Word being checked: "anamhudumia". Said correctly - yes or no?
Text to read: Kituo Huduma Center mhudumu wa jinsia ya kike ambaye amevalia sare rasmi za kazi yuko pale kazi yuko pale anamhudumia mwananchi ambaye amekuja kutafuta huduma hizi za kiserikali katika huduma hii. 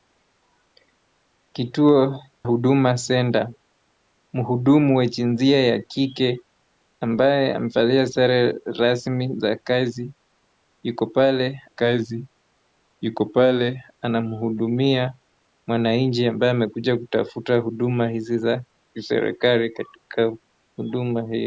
yes